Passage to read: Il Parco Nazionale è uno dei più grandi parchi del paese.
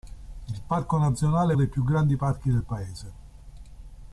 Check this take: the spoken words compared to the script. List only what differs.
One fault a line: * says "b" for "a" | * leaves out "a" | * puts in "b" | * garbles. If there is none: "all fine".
* leaves out "uno"